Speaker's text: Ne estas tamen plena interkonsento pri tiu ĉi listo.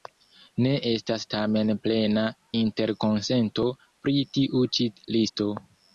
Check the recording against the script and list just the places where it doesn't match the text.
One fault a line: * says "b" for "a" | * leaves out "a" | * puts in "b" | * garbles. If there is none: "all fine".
all fine